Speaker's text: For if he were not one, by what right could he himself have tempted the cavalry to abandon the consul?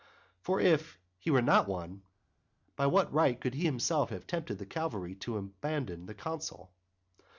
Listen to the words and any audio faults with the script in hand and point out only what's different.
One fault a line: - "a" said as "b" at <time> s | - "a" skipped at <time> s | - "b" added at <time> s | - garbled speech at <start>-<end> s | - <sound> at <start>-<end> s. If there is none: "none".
none